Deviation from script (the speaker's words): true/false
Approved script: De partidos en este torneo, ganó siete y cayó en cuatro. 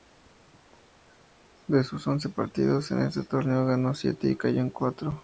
true